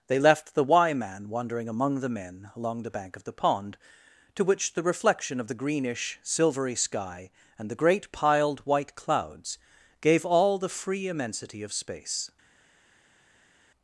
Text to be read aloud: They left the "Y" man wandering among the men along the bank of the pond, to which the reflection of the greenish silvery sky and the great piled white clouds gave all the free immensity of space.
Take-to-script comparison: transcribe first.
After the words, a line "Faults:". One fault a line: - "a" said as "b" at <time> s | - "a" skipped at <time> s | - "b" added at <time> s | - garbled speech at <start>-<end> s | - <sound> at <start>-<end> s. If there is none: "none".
They left the "Y" man wandering among the men along the bank of the pond, to which the reflection of the greenish silvery sky and the great piled white clouds gave all the free immensity of space.
Faults:
none